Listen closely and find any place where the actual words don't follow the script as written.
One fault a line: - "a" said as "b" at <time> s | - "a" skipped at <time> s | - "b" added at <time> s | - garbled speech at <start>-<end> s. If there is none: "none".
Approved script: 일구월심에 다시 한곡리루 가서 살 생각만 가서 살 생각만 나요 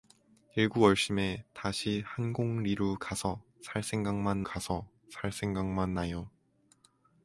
none